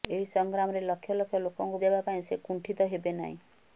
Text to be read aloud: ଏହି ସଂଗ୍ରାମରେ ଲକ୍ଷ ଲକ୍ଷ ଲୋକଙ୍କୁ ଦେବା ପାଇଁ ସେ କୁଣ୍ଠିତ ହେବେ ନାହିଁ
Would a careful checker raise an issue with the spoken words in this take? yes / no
no